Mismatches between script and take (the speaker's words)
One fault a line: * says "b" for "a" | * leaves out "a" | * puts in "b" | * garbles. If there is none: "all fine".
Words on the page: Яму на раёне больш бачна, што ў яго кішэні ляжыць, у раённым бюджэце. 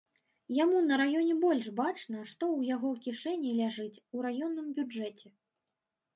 all fine